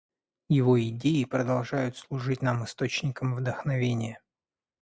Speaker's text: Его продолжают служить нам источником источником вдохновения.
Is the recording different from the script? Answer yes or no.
yes